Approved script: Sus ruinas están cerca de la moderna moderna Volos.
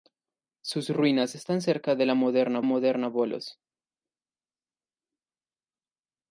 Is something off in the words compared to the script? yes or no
no